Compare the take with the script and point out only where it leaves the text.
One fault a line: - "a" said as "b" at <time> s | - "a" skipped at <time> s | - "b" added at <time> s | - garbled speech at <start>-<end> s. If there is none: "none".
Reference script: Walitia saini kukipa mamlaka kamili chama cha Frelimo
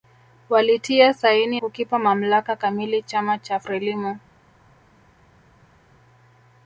none